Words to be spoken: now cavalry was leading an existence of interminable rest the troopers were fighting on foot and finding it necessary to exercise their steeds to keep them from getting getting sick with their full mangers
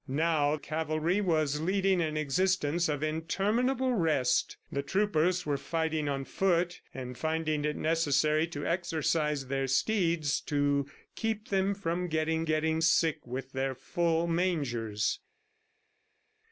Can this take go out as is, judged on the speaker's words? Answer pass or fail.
pass